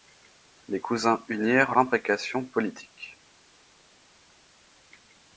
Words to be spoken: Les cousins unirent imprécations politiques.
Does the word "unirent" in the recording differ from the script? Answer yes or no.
no